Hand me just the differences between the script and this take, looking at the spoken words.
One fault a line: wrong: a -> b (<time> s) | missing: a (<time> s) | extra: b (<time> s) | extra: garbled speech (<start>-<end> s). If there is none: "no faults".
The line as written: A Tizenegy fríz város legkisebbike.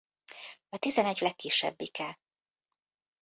missing: fríz város (1.2 s)